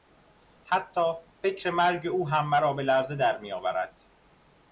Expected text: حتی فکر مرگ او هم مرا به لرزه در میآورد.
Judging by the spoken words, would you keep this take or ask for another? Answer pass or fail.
pass